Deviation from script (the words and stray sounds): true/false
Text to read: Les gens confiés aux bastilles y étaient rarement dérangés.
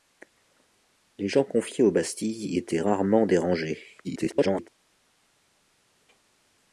true